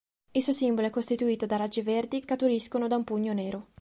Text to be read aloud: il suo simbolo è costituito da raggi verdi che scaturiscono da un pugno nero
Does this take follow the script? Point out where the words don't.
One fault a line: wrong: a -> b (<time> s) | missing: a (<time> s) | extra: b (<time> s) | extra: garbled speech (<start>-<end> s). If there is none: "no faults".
missing: che (2.2 s)